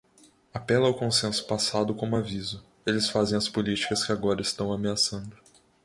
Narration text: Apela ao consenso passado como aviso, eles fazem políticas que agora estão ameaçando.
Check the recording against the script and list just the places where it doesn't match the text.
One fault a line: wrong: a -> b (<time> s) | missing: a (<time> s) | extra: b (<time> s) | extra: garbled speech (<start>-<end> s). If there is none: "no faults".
extra: as (3.3 s)